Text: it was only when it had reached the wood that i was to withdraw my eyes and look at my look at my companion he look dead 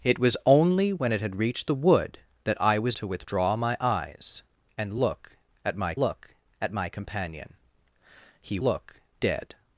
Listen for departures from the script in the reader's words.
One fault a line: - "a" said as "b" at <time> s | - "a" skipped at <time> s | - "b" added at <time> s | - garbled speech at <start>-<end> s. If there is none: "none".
none